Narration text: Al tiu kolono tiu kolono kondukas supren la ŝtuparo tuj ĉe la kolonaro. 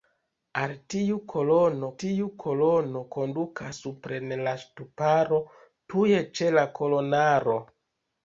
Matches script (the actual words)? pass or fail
pass